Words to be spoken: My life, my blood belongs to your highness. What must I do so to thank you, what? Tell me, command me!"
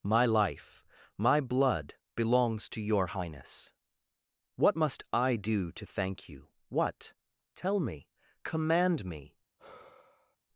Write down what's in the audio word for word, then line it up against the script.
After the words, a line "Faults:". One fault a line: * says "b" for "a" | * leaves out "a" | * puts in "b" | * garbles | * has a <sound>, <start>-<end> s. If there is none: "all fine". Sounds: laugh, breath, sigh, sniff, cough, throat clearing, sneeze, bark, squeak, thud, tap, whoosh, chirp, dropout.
My life, my blood belongs to your highness. What must I do to thank you, what? Tell me, command me!"
Faults:
* leaves out "so"
* has a sigh, 9.6-10.4 s